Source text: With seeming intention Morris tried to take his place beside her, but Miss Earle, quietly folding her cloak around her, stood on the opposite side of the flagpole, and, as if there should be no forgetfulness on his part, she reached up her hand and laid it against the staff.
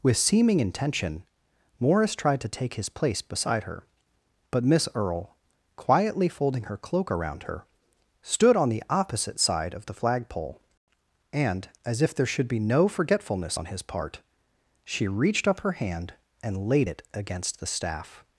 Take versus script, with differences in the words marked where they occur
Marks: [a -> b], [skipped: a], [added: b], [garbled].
With seeming intention Morris tried to take his place beside her, but Miss Earle, quietly folding her cloak around her, stood on the opposite side of the flagpole, and, as if there should be no forgetfulness on his part, she reached up her hand and laid it against the staff.